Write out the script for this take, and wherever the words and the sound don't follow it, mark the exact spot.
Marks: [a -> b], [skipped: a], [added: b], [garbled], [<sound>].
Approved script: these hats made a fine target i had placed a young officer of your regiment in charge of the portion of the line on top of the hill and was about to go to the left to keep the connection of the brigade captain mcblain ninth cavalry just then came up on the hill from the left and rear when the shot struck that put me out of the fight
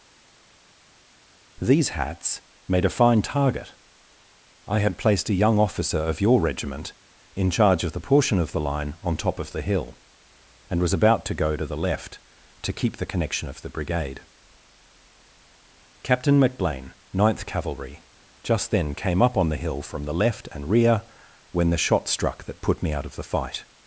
these hats made a fine target i had placed a young officer of your regiment in charge of the portion of the line on top of the hill and was about to go to the left to keep the connection of the brigade captain mcblain ninth cavalry just then came up on the hill from the left and rear when the shot struck that put me out of the fight